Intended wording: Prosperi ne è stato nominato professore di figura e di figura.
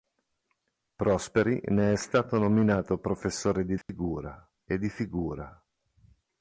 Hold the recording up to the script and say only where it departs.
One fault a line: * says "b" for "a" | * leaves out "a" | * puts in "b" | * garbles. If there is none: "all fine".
all fine